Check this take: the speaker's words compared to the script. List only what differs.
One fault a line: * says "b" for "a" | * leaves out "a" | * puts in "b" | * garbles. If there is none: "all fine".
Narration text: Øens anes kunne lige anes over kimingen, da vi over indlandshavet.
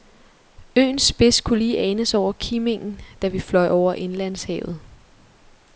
* says "spids" for "anes"
* puts in "fløj"